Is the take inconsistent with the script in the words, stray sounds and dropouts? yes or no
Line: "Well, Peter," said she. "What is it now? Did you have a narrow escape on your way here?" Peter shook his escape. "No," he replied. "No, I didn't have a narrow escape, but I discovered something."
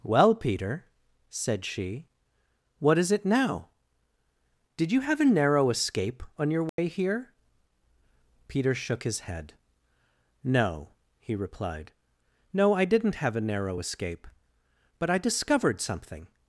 yes